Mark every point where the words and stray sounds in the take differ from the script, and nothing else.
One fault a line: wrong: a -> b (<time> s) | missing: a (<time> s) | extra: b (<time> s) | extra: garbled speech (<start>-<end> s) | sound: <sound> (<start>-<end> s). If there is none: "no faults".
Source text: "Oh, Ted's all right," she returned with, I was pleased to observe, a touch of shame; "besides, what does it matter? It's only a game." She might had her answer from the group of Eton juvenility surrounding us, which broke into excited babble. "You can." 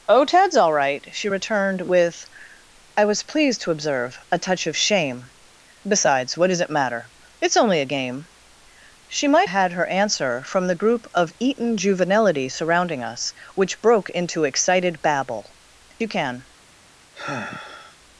sound: sigh (17.1-18.0 s)